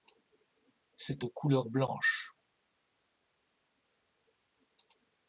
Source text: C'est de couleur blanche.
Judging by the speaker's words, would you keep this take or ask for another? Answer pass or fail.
pass